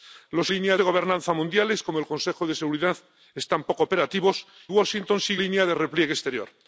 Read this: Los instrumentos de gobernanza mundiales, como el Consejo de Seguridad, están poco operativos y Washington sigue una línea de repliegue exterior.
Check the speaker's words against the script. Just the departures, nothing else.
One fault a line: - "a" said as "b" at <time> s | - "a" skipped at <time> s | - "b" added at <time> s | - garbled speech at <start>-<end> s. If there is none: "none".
- "instrumentos" said as "línea" at 0.5 s
- "y" skipped at 4.4 s
- "una" skipped at 5.4 s